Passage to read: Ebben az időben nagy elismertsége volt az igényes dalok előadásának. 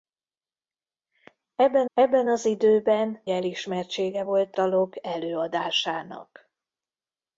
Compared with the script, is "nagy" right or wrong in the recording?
wrong